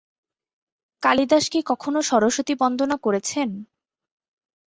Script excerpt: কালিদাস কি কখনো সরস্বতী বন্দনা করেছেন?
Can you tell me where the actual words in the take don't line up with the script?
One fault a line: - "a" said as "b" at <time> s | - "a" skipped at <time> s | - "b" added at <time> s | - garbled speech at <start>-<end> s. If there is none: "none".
none